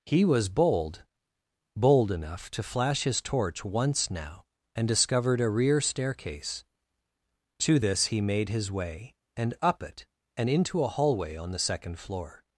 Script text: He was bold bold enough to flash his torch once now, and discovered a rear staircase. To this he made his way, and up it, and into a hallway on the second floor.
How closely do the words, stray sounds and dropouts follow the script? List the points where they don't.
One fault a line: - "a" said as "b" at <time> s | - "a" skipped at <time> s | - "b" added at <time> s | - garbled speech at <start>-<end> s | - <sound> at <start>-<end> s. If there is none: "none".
none